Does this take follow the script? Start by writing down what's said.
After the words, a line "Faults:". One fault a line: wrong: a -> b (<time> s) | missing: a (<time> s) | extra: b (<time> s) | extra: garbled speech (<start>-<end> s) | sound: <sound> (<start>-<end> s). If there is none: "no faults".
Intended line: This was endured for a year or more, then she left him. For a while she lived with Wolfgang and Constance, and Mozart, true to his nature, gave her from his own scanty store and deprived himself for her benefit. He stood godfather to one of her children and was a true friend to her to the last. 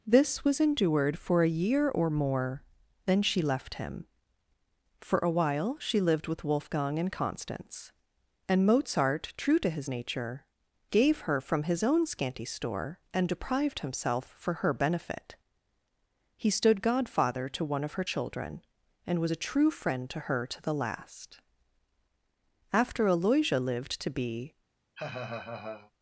This was endured for a year or more, then she left him. For a while she lived with Wolfgang and Constance, and Mozart, true to his nature, gave her from his own scanty store and deprived himself for her benefit. He stood godfather to one of her children and was a true friend to her to the last. After Aloysia lived to be
Faults:
extra: After Aloysia lived to be (22.7 s)
sound: laugh (24.9-25.9 s)